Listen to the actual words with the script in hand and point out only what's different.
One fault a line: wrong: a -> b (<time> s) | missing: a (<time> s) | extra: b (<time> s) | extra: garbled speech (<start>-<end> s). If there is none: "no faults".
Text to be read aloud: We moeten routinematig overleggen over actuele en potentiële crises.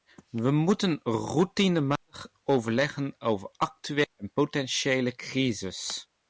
no faults